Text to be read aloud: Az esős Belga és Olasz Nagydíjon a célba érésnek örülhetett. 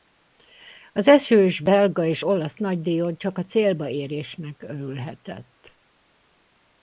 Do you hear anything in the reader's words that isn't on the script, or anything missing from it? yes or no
yes